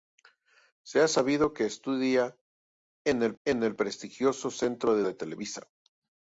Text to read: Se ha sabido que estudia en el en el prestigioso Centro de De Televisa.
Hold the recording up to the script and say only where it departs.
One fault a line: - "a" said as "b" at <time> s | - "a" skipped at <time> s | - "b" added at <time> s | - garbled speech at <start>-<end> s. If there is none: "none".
none